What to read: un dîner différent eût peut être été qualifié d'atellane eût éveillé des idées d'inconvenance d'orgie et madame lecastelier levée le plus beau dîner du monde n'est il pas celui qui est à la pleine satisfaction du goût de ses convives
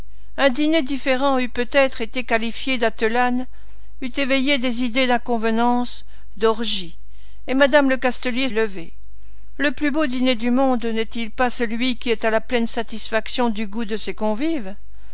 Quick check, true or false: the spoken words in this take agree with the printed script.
true